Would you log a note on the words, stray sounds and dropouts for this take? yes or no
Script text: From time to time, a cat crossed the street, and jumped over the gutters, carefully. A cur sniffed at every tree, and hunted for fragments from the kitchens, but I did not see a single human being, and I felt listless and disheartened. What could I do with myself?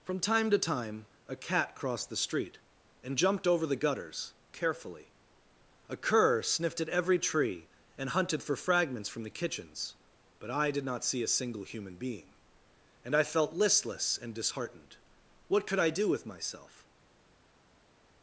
no